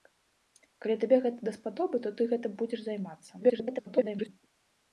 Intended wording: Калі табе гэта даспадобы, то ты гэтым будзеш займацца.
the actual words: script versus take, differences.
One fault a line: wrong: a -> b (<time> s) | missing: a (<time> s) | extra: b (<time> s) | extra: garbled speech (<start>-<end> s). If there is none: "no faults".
extra: garbled speech (3.4-4.3 s)